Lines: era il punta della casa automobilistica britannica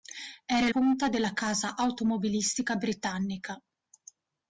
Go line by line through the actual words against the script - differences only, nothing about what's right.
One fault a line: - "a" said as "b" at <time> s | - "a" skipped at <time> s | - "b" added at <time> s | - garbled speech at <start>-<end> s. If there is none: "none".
none